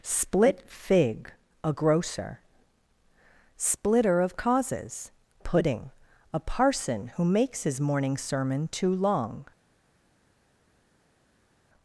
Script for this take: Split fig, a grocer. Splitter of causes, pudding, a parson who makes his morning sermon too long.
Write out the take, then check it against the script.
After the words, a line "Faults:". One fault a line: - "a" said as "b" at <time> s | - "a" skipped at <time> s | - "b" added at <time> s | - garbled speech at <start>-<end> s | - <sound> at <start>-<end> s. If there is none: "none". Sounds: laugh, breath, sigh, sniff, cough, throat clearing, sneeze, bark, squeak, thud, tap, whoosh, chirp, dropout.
Split fig, a grocer. Splitter of causes, pudding, a parson who makes his morning sermon too long.
Faults:
none